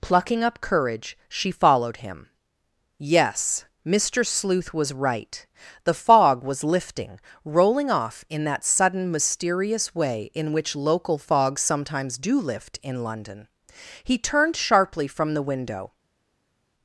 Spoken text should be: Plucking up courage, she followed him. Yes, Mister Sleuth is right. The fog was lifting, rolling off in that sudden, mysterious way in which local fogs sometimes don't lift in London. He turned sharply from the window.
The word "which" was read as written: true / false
true